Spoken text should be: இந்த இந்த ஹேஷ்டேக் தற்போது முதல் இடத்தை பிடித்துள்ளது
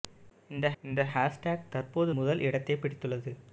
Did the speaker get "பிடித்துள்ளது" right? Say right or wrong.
right